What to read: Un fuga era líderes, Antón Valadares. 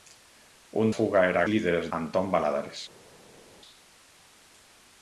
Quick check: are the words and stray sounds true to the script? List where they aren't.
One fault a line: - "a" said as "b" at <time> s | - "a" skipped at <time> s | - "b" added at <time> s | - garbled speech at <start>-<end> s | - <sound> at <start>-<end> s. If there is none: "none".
none